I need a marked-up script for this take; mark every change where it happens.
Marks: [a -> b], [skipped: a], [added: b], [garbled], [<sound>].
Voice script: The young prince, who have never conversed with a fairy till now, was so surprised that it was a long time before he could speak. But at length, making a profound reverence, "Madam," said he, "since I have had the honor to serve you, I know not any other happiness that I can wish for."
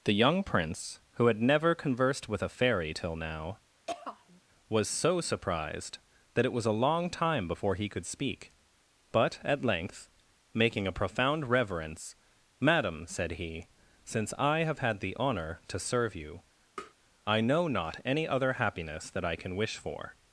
The young prince, who [have -> had] never conversed with a fairy till now, [throat clearing] was so surprised that it was a long time before he could speak. But at length, making a profound reverence, "Madam," said he, "since I have had the honor to serve you, [tap] I know not any other happiness that I can wish for."